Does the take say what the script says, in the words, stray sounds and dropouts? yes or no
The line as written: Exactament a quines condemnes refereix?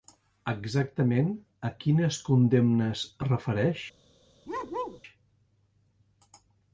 no